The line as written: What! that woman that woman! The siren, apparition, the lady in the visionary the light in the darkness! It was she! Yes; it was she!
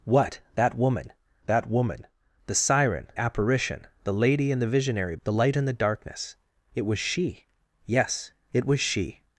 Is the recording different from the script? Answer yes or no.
no